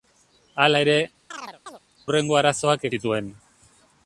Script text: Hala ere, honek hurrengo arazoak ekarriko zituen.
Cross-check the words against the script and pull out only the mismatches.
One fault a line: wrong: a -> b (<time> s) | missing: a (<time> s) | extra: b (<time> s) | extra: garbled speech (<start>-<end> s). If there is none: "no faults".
missing: honek (0.9 s)
missing: ekarriko (2.9 s)